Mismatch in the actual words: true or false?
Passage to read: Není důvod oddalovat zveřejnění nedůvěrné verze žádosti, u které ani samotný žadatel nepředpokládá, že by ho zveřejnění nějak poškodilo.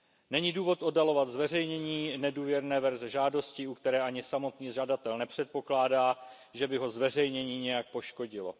false